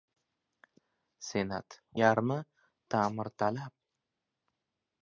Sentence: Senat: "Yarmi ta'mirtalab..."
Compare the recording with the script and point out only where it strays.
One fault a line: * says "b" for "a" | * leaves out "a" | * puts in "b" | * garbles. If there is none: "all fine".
all fine